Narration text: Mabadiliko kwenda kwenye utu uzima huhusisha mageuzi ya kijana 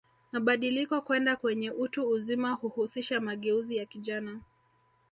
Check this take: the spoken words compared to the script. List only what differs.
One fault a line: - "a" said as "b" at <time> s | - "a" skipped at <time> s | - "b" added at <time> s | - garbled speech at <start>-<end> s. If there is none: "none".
none